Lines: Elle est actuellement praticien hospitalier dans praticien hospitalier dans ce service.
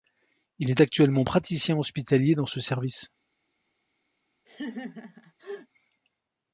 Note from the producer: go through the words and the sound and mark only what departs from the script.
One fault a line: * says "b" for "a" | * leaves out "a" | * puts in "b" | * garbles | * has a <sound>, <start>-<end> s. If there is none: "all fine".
* says "Il" for "Elle"
* leaves out "praticien hospitalier dans"
* has a laugh, 4.5-5.7 s